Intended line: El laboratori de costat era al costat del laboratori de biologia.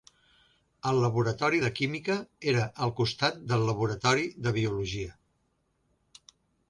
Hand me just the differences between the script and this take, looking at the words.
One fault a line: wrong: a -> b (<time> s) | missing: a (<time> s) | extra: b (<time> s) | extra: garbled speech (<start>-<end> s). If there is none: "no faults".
wrong: costat -> química (1.8 s)